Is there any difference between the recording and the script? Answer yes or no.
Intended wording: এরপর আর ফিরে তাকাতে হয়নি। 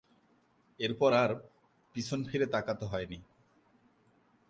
yes